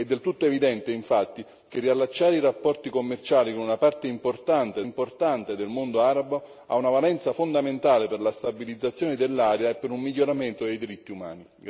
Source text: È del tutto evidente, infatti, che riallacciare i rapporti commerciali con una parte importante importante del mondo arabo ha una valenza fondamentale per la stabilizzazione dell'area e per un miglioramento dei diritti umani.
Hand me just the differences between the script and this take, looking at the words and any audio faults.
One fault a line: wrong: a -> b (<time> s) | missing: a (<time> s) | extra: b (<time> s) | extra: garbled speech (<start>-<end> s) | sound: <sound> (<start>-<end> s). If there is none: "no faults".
no faults